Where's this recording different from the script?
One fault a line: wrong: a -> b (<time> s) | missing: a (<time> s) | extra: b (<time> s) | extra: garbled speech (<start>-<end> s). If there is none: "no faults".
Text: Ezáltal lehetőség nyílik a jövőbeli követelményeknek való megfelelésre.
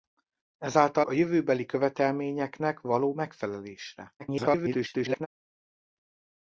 missing: lehetőség nyílik (1.1 s)
extra: garbled speech (4.2-5.3 s)